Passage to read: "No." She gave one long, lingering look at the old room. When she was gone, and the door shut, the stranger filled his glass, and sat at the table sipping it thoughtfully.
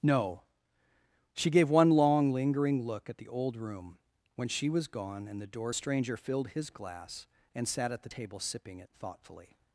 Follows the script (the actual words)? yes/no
no